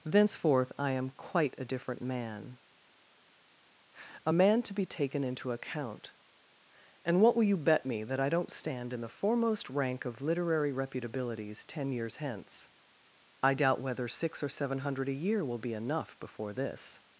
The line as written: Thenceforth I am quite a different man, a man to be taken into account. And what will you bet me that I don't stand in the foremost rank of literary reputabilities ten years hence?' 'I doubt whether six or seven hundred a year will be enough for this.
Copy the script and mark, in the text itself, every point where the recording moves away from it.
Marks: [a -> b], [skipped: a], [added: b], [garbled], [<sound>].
Thenceforth I am quite a different man, a man to be taken into account. And what will you bet me that I don't stand in the foremost rank of literary reputabilities ten years hence?' 'I doubt whether six or seven hundred a year will be enough [for -> before] this.